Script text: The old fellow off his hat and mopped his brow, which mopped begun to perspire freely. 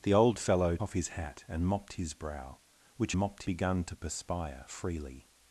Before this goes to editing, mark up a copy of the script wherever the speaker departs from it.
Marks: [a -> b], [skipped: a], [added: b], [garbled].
The old fellow off his hat and mopped his brow, which mopped begun to perspire freely.